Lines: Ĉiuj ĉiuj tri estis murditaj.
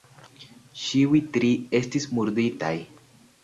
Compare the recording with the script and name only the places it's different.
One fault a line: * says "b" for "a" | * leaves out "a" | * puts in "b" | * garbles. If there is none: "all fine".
* leaves out "ĉiuj"